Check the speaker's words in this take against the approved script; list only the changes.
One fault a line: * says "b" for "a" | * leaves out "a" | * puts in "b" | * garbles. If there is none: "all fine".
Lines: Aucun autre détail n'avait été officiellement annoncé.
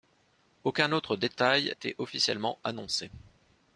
* leaves out "n'avait"